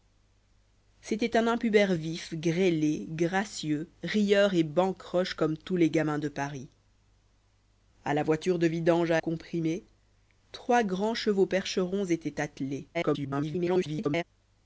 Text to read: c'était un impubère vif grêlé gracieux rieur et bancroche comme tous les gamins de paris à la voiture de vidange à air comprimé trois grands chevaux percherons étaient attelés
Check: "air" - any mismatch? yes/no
yes